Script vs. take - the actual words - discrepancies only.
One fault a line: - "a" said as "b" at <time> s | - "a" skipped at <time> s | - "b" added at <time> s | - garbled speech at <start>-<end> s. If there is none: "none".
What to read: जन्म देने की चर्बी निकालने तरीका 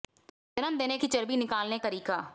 none